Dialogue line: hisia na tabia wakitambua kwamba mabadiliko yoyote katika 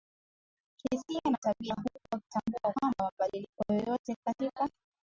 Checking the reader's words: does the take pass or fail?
fail